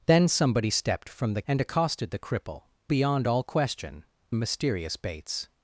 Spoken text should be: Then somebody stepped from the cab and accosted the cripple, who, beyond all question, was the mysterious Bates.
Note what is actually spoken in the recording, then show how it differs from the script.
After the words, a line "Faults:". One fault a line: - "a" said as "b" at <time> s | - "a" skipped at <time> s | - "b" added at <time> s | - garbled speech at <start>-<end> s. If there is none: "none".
Then somebody stepped from the and accosted the cripple, beyond all question, mysterious Bates.
Faults:
- "cab" skipped at 1.4 s
- "who" skipped at 2.6 s
- "was the" skipped at 4.0 s